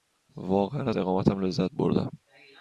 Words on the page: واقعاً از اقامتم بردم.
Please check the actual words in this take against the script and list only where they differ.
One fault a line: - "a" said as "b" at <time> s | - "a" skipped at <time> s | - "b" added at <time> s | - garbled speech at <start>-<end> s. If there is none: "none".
- "لذت" added at 1.4 s